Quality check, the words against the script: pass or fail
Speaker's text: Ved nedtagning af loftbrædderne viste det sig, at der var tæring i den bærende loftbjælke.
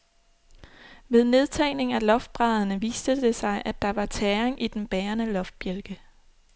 pass